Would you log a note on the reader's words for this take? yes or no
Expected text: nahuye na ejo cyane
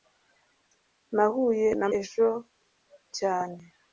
no